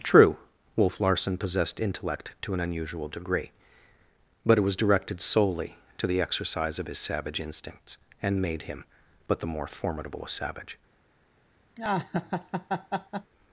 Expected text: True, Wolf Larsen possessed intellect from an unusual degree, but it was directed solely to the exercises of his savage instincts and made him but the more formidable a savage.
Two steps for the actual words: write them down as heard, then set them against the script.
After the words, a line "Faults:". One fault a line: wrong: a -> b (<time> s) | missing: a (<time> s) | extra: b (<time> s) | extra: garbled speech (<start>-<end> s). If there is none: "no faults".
True, Wolf Larsen possessed intellect to an unusual degree, but it was directed solely to the exercise of his savage instincts and made him but the more formidable a savage.
Faults:
wrong: from -> to (2.4 s)
wrong: exercises -> exercise (6.2 s)